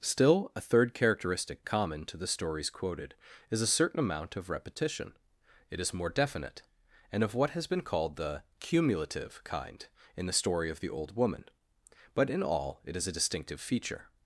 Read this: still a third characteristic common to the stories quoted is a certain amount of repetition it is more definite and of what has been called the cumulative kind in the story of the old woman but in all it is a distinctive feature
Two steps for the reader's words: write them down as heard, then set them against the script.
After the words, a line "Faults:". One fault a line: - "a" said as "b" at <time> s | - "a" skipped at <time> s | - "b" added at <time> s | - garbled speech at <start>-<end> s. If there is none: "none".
still a third characteristic common to the stories quoted is a certain amount of repetition it is more definite and of what has been called the cumulative kind in the story of the old woman but in all it is a distinctive feature
Faults:
none